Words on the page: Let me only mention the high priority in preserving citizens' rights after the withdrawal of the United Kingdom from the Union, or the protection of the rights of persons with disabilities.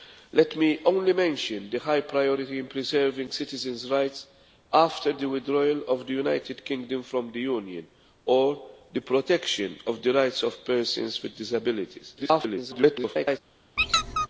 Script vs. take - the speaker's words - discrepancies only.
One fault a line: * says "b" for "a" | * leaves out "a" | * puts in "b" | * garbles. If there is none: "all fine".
* garbles